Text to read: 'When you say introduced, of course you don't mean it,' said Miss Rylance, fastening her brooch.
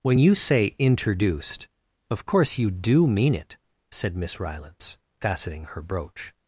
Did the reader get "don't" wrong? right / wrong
wrong